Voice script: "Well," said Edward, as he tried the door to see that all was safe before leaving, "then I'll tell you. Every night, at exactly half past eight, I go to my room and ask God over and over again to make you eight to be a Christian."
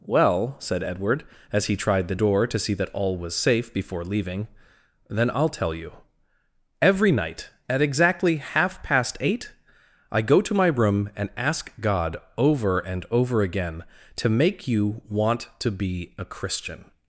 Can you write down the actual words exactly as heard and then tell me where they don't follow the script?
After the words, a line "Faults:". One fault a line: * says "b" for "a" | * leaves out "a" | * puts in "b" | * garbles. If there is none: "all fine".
"Well," said Edward, as he tried the door to see that all was safe before leaving, "then I'll tell you. Every night, at exactly half past eight, I go to my room and ask God over and over again to make you want to be a Christian."
Faults:
* says "want" for "eight"